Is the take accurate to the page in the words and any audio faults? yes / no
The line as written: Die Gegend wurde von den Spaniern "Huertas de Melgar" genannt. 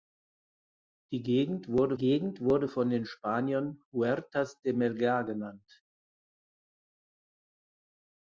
no